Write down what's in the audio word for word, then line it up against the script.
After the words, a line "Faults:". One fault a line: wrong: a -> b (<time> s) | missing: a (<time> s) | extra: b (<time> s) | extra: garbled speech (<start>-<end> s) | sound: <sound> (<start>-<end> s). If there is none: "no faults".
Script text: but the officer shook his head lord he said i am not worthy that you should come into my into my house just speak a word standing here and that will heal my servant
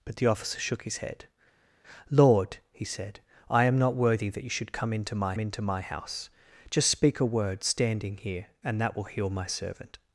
but the officer shook his head lord he said i am not worthy that you should come into my into my house just speak a word standing here and that will heal my servant
Faults:
no faults